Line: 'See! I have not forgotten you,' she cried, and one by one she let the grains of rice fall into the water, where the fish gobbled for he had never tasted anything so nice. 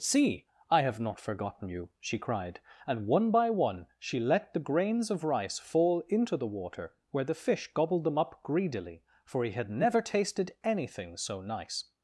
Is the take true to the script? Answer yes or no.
no